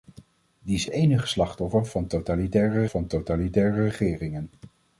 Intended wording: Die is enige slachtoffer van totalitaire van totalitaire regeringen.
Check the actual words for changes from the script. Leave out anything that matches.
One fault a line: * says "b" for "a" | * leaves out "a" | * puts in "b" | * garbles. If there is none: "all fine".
all fine